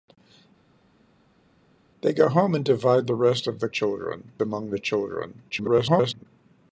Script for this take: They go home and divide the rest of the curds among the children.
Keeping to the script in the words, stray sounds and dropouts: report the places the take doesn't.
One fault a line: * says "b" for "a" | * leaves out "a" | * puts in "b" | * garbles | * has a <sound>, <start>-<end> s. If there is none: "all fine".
* says "children" for "curds"
* garbles